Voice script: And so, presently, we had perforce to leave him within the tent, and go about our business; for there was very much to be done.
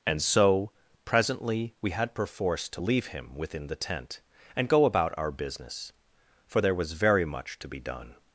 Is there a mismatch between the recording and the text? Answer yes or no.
no